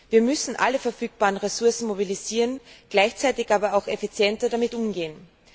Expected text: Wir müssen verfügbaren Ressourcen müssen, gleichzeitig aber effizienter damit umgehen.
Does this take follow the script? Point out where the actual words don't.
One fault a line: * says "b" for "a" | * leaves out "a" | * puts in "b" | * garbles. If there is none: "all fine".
* puts in "alle"
* says "mobilisieren" for "müssen"
* puts in "auch"